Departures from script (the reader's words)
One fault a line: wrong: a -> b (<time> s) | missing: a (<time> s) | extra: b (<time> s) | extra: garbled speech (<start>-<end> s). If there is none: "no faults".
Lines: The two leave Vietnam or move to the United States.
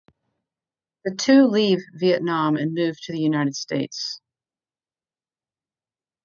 wrong: or -> and (2.6 s)